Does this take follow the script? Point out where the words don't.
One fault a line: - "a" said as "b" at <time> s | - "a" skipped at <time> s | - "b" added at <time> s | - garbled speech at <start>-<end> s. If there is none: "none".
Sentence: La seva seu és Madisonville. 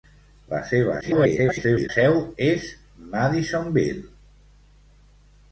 - garbled speech at 1.0-1.9 s